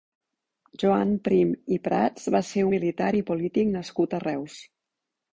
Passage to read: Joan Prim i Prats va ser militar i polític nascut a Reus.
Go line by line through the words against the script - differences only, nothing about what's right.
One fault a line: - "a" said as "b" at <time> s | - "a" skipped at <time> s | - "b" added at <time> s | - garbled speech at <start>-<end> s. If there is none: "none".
none